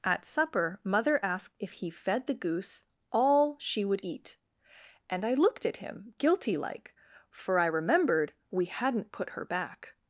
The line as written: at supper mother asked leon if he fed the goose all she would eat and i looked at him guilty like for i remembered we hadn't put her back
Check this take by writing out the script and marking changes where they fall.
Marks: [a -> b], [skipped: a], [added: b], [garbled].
at supper mother asked [skipped: leon] if he fed the goose all she would eat and i looked at him guilty like for i remembered we hadn't put her back